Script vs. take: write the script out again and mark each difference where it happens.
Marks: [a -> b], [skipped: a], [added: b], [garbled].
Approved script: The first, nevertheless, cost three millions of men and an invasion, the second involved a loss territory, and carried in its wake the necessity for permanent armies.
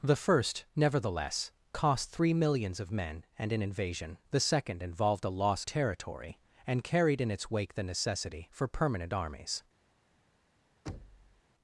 The first, nevertheless, cost three millions of men and an invasion, the second involved a loss territory, and carried in its wake the necessity for permanent armies.